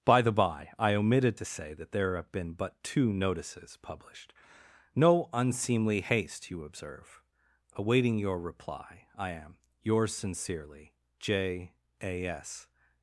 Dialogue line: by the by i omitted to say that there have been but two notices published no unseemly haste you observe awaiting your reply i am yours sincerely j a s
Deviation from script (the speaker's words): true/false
false